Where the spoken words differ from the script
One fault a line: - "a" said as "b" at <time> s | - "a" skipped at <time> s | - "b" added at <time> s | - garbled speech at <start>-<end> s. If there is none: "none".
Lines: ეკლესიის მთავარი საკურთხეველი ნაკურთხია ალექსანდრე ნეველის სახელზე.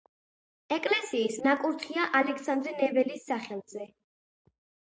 - "მთავარი საკურთხეველი" skipped at 1.4 s